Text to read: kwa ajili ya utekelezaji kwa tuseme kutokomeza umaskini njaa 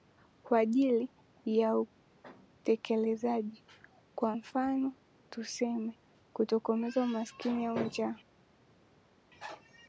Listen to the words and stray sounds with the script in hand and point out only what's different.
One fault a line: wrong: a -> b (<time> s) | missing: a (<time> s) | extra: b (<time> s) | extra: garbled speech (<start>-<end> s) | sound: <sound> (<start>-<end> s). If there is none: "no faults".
extra: mfano (4.3 s)
extra: au (7.7 s)